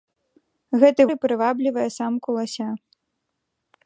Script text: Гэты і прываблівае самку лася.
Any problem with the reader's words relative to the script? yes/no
no